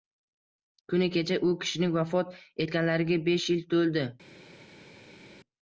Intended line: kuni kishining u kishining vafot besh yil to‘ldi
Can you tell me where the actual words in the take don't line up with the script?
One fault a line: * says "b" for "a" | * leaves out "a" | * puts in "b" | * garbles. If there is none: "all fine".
* says "kecha" for "kishining"
* puts in "etganlariga"